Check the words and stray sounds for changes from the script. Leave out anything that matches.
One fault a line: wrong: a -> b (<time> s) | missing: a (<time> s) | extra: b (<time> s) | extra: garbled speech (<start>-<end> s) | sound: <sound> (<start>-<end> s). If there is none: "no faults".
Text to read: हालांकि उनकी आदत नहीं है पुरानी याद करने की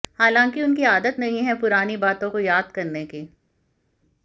extra: बातों को (2.0 s)